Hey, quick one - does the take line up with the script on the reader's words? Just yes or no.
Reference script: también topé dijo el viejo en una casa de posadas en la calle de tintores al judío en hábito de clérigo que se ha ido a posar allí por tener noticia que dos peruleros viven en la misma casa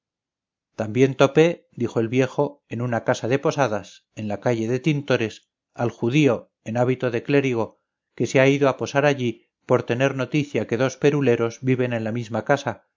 yes